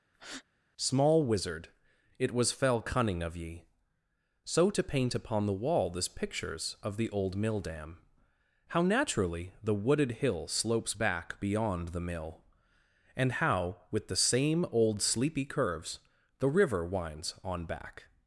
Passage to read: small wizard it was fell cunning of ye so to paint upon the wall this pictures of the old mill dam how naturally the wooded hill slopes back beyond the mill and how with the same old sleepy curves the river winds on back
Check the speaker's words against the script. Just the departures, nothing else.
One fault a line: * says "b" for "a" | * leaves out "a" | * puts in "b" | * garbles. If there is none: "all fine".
all fine